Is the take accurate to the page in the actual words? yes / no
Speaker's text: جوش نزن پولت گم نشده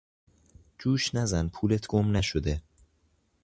yes